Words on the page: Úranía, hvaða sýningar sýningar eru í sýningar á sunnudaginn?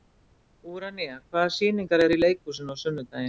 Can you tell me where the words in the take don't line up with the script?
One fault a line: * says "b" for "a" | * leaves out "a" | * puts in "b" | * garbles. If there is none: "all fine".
* leaves out "sýningar"
* says "leikhúsinu" for "sýningar"